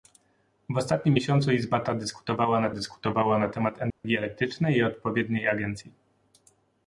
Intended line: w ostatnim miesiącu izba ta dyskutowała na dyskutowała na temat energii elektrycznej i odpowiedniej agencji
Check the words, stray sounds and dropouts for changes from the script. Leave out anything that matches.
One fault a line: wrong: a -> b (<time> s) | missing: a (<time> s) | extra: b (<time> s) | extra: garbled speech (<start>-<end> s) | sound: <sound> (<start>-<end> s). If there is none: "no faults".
sound: dropout (3.9-4.0 s)